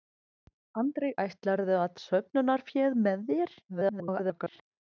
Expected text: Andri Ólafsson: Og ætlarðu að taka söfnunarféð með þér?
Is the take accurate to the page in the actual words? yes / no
no